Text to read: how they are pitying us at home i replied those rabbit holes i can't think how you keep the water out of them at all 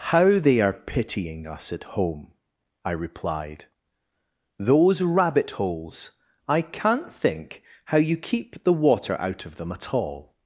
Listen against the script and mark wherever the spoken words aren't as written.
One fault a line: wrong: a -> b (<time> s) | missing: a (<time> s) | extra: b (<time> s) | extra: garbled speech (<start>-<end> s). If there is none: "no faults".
no faults